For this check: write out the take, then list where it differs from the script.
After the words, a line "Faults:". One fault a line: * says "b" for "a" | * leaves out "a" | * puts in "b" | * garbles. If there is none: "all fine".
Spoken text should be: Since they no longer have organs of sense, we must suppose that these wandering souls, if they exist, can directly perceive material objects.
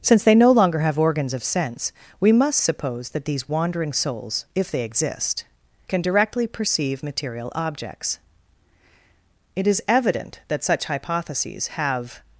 Since they no longer have organs of sense, we must suppose that these wandering souls, if they exist, can directly perceive material objects. It is evident that such hypotheses have
Faults:
* puts in "It is evident that such hypotheses have"